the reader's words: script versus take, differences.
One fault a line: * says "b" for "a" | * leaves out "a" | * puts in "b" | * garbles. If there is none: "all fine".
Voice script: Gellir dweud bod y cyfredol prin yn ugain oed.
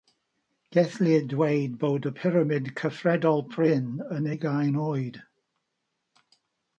* puts in "pyramid"